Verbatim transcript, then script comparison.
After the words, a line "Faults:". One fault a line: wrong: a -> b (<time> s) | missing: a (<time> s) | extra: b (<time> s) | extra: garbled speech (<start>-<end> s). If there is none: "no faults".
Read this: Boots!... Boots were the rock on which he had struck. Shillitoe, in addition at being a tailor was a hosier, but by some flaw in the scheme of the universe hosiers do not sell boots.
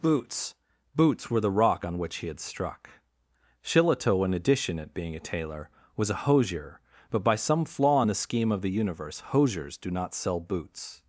Boots!... Boots were the rock on which he had struck. Shillitoe, in addition at being a tailor was a hosier, but by some flaw in the scheme of the universe hosiers do not sell boots.
Faults:
no faults